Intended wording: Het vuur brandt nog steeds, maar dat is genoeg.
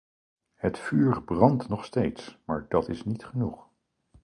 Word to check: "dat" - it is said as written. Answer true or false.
true